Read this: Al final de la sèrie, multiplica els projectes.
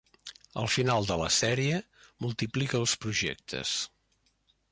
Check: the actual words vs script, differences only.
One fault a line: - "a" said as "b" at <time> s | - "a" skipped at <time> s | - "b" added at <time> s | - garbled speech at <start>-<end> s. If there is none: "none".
none